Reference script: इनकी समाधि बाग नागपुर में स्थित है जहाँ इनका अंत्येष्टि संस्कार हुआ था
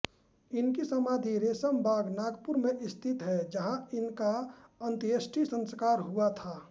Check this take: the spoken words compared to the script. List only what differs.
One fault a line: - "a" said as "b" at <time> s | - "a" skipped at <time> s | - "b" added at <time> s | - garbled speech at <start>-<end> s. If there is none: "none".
- "रेशम" added at 1.4 s